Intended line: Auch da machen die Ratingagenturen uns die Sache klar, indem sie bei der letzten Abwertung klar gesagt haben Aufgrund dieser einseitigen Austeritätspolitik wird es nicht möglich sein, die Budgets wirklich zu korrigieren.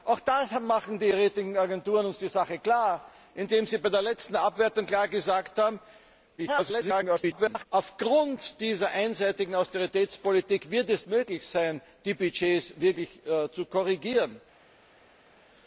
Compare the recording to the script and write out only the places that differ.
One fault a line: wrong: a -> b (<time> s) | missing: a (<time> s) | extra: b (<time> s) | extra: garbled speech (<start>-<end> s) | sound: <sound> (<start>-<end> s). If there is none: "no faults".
extra: garbled speech (6.4-7.7 s)
missing: nicht (11.1 s)